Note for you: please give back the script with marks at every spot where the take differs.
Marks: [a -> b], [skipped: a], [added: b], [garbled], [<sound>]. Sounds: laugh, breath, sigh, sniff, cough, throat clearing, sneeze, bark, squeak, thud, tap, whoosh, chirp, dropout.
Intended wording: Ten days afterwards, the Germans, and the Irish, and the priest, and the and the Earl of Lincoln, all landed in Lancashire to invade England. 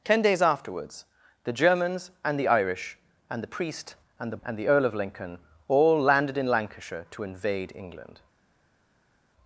Ten days afterwards, the Germans, and the Irish, and the priest, and the and the Earl of Lincoln, all landed in Lancashire to invade England.